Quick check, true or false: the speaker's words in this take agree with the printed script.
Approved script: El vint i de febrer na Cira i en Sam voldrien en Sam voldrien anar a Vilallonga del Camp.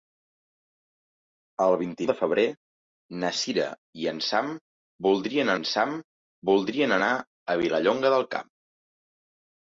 true